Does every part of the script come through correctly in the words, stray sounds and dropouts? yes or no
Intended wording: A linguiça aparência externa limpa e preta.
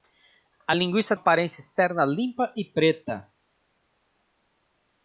yes